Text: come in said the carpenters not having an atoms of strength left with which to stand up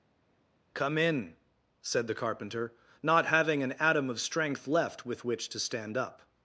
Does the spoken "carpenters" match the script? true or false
false